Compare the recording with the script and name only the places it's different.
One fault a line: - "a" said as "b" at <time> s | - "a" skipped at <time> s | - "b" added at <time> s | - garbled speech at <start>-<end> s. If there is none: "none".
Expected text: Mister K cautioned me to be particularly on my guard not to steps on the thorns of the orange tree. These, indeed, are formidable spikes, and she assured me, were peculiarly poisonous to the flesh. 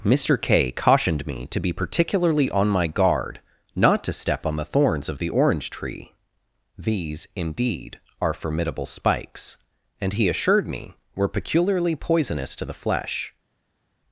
- "steps" said as "step" at 4.1 s
- "she" said as "he" at 10.1 s